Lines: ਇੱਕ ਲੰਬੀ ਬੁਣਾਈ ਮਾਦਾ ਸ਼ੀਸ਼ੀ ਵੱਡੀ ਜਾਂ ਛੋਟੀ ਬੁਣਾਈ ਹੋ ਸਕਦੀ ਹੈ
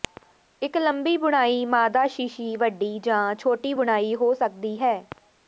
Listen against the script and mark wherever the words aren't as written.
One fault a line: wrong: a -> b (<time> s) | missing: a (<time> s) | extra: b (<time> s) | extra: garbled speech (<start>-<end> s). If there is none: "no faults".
no faults